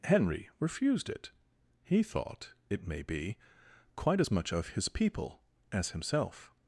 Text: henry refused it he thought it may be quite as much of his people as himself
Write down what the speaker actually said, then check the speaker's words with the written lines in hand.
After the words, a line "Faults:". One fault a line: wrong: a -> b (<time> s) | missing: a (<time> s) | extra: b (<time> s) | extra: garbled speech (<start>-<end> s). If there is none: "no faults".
henry refused it he thought it may be quite as much of his people as himself
Faults:
no faults